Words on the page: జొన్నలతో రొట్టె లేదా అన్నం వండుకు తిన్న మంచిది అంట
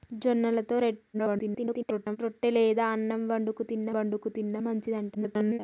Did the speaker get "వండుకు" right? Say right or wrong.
right